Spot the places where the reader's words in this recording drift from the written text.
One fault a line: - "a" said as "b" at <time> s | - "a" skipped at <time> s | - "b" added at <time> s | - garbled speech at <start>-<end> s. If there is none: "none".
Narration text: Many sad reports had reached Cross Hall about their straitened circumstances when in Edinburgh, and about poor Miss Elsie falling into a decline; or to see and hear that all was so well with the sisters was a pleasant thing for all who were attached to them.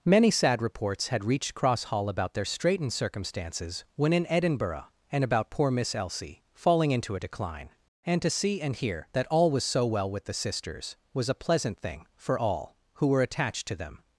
- "or" said as "and" at 8.0 s